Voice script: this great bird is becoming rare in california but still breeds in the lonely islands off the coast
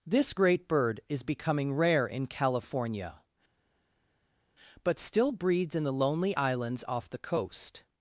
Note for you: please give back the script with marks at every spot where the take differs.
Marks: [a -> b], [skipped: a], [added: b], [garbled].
this great bird is becoming rare in california but still breeds in the lonely islands off the coast